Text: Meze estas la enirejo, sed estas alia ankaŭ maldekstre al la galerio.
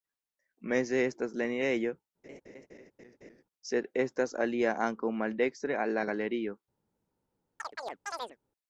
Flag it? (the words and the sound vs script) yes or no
yes